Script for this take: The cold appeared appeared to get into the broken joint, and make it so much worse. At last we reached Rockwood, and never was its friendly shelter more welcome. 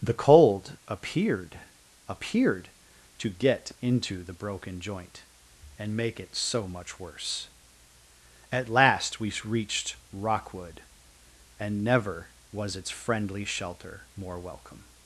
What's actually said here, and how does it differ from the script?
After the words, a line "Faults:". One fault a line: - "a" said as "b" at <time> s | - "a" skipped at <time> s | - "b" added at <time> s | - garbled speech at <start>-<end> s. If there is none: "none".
The cold appeared appeared to get into the broken joint, and make it so much worse. At last we reached Rockwood, and never was its friendly shelter more welcome.
Faults:
none